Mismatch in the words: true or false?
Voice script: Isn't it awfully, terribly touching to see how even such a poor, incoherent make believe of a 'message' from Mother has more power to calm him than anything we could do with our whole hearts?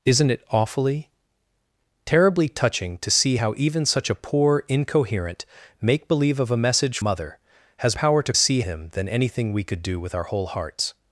true